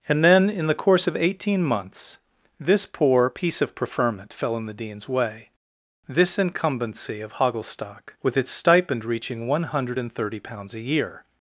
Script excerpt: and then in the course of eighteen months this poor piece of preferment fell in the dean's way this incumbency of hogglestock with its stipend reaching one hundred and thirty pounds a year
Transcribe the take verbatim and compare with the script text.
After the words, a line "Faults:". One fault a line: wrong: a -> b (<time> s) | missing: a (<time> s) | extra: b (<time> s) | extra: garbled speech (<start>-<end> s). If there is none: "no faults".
and then in the course of eighteen months this poor piece of preferment fell in the dean's way this incumbency of hogglestock with its stipend reaching one hundred and thirty pounds a year
Faults:
no faults